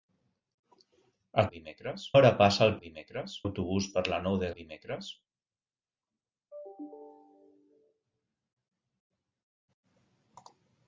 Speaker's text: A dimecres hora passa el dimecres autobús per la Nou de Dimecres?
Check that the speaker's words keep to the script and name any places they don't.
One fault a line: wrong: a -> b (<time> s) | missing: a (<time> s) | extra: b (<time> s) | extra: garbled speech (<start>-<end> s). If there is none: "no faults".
no faults